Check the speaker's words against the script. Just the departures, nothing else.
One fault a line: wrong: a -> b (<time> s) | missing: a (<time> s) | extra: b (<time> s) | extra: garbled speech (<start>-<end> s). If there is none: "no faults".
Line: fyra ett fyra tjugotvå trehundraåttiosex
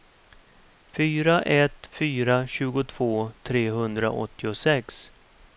no faults